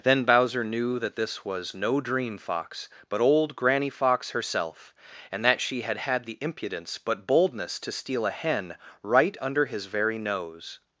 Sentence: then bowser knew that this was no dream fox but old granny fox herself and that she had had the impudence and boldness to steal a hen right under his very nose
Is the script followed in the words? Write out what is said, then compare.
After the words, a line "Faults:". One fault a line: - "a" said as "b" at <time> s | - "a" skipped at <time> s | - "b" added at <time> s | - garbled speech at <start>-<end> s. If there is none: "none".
then bowser knew that this was no dream fox but old granny fox herself and that she had had the impudence but boldness to steal a hen right under his very nose
Faults:
- "and" said as "but" at 7.0 s